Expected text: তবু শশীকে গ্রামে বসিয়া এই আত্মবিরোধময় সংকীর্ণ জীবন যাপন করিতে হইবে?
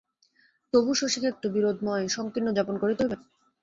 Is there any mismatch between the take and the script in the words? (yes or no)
yes